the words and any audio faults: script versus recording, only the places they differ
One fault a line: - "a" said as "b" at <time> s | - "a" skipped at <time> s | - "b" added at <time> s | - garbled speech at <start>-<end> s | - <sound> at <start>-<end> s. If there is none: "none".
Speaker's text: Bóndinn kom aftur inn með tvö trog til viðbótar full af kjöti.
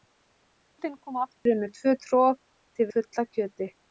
- dropout at 1.4-1.5 s
- "viðbótar" skipped at 2.9 s